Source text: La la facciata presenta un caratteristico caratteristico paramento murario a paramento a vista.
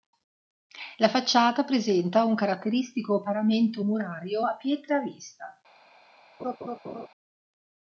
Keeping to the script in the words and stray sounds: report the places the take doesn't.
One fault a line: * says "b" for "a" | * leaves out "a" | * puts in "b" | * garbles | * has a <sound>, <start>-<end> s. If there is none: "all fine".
* leaves out "la"
* leaves out "caratteristico"
* says "pietre" for "paramento"
* has a laugh, 6.4-7.1 s